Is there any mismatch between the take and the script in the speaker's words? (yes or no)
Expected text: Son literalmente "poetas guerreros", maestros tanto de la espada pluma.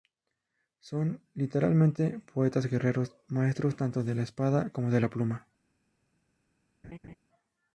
yes